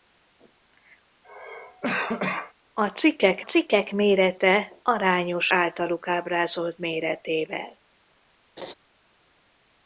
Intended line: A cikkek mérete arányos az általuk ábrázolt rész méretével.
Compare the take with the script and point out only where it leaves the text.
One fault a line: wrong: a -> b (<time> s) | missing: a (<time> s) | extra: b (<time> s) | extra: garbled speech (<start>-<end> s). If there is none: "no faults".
extra: cikkek (3.4 s)
missing: az (5.5 s)
missing: rész (6.8 s)